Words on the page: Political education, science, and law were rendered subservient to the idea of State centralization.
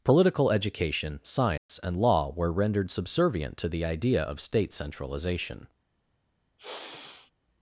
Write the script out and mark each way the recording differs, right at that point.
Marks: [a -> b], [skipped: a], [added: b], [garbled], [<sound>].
Political education, science, [dropout] and law were rendered subservient to the idea of State centralization. [sigh]